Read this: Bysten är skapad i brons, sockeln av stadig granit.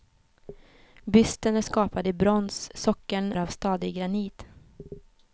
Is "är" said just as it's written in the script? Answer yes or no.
yes